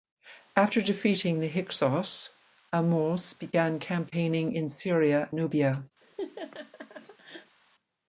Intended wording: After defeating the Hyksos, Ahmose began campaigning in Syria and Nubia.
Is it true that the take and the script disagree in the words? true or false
true